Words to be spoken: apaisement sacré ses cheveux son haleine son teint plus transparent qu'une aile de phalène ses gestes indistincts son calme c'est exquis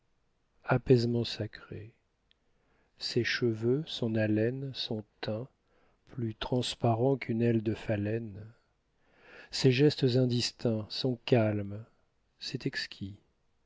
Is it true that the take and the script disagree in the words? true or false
false